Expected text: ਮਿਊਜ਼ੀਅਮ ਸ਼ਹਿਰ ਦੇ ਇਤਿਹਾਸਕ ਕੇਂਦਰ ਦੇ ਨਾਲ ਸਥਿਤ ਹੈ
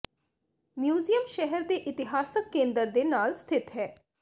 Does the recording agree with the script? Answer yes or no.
yes